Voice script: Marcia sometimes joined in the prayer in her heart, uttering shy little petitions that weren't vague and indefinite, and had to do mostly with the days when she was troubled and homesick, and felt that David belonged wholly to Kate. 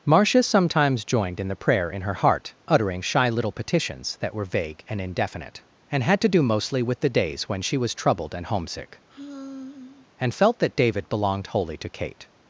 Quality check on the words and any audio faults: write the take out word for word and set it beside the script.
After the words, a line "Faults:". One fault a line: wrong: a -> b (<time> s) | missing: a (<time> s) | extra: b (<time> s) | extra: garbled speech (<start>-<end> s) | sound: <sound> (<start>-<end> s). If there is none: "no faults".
Marcia sometimes joined in the prayer in her heart, uttering shy little petitions that were vague and indefinite, and had to do mostly with the days when she was troubled and homesick, and felt that David belonged wholly to Kate.
Faults:
wrong: weren't -> were (4.3 s)
sound: sigh (9.1-10.1 s)